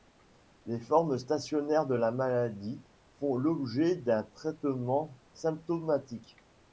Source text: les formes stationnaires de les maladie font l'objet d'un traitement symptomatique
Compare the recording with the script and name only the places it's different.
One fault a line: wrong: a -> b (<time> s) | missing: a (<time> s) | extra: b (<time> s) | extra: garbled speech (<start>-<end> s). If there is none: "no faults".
wrong: les -> la (1.9 s)